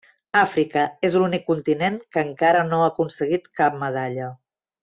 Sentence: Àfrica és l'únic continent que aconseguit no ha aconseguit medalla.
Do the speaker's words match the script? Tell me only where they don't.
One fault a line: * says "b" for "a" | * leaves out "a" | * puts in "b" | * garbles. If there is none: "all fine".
* says "encara" for "aconseguit"
* puts in "cap"